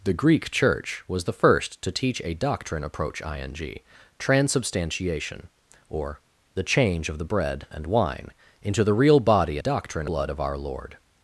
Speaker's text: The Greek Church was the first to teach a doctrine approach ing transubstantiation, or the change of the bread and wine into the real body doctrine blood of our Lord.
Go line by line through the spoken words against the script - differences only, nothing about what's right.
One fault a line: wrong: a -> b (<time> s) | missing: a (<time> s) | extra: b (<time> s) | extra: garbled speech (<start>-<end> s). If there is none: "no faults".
no faults